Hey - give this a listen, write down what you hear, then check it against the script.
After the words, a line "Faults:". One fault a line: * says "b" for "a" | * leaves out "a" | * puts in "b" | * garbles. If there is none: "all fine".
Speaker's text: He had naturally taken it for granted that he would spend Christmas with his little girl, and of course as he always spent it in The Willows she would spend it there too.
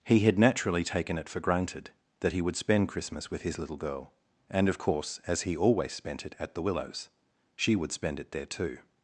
He had naturally taken it for granted that he would spend Christmas with his little girl, and of course as he always spent it at The Willows she would spend it there too.
Faults:
* says "at" for "in"